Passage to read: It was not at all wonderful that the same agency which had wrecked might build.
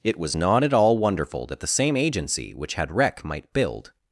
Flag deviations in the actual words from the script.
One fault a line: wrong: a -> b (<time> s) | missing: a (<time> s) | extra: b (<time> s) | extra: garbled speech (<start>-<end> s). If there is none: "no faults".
wrong: wrecked -> wreck (2.9 s)